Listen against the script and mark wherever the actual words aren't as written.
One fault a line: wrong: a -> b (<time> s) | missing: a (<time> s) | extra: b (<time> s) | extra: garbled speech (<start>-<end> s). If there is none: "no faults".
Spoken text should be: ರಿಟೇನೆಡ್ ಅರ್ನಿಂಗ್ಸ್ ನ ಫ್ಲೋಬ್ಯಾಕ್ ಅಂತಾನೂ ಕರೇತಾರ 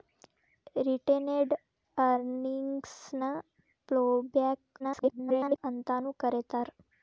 extra: garbled speech (4.8-5.6 s)